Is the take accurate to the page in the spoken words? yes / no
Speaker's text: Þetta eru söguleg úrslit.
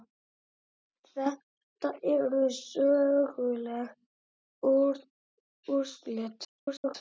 no